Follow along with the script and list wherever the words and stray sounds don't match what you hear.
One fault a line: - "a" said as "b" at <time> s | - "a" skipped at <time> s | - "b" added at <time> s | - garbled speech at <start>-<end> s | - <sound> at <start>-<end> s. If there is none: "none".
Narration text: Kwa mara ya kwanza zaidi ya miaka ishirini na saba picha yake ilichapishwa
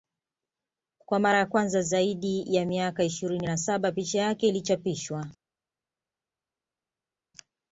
none